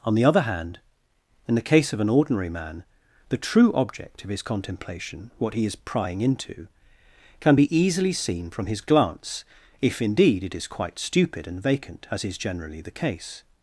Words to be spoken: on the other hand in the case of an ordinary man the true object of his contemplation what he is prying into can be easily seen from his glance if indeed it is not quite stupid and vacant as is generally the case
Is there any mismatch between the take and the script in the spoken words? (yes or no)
yes